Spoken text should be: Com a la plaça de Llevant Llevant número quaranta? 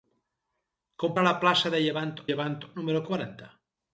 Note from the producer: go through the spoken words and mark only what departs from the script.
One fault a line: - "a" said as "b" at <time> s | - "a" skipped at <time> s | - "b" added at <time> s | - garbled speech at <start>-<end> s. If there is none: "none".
none